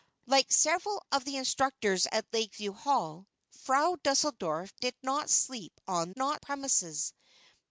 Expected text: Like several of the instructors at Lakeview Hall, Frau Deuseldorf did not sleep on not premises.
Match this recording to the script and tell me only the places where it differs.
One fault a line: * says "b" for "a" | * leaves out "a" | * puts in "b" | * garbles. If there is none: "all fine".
all fine